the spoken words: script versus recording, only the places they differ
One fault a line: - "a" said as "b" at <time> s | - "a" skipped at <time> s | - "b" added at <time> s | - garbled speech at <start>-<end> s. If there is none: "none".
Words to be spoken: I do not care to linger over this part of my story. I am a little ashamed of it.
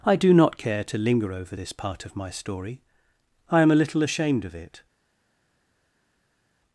none